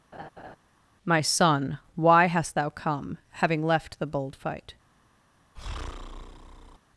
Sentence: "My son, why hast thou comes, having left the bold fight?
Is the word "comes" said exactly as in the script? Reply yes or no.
no